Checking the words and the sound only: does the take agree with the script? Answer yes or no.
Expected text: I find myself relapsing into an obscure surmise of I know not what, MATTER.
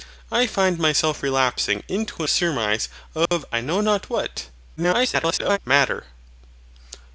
no